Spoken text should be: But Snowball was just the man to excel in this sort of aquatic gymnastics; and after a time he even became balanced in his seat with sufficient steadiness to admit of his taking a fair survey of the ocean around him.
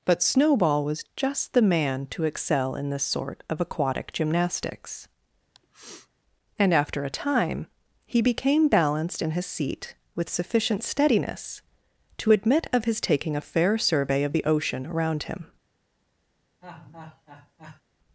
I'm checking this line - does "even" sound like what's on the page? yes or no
no